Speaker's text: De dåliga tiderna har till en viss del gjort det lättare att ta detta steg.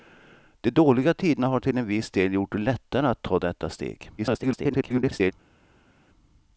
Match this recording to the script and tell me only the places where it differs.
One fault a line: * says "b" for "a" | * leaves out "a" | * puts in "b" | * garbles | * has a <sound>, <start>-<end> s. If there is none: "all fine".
* garbles